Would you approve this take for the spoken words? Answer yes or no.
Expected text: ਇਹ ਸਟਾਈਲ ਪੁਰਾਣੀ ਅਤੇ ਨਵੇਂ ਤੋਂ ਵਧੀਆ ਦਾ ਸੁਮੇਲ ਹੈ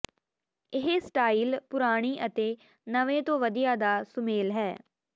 yes